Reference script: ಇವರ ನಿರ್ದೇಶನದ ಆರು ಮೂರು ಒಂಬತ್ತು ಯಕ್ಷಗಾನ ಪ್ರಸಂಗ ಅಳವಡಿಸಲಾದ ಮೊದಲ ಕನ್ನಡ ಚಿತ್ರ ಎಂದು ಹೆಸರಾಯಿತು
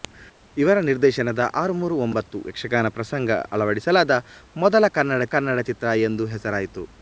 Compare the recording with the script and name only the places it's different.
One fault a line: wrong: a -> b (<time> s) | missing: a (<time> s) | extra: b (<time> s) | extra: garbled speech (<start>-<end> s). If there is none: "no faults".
extra: ಕನ್ನಡ (5.3 s)